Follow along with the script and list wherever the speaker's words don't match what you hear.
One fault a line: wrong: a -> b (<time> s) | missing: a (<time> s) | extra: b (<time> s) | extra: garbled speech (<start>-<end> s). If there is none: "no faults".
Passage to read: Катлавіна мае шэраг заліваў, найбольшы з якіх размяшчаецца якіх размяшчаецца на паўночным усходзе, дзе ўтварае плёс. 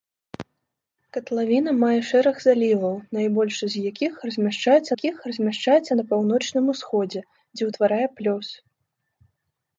no faults